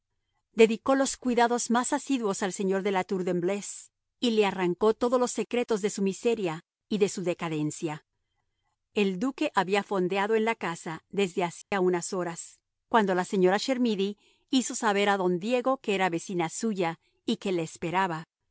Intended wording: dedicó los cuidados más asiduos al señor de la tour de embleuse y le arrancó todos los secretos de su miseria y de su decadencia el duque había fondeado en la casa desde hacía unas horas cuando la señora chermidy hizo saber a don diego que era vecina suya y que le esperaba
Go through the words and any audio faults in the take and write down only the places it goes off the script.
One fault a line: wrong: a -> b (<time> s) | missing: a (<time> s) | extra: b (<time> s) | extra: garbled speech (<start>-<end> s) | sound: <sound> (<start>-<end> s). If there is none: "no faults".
sound: dropout (11.6-11.7 s)